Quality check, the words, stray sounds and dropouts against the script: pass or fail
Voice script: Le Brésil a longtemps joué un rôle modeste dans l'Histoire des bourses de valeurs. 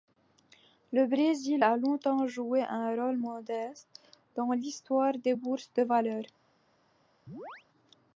fail